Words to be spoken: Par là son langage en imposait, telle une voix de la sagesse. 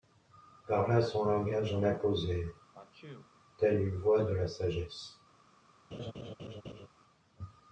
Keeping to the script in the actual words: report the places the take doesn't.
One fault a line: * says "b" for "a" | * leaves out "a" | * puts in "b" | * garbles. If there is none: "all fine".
all fine